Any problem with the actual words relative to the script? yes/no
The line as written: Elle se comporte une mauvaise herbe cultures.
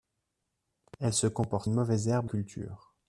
no